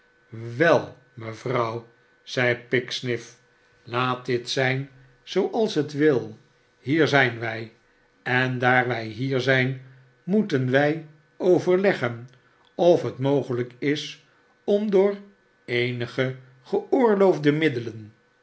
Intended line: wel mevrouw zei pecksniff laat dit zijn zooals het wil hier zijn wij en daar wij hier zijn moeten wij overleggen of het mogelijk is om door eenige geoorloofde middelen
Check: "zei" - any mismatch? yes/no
no